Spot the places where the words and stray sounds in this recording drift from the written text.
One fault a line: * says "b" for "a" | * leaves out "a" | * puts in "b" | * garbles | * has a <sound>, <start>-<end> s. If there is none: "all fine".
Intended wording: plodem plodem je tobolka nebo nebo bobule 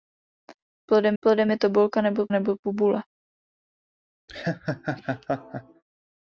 * has a laugh, 4.3-5.8 s